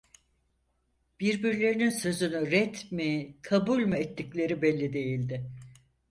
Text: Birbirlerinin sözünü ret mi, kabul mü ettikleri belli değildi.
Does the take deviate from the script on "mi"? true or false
false